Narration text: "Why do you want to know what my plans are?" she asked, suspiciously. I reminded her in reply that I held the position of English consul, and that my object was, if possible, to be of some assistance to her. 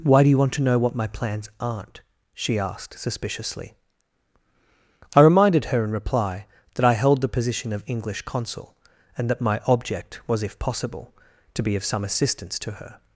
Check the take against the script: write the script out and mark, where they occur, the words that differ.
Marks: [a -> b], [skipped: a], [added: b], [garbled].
"Why do you want to know what my plans [are?" -> aren't] she asked, suspiciously. I reminded her in reply that I held the position of English consul, and that my object was, if possible, to be of some assistance to her.